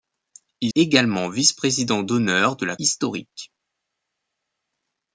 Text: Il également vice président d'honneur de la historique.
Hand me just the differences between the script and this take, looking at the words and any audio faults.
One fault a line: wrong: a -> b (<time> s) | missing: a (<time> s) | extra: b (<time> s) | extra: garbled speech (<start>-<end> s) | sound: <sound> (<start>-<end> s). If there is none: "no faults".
no faults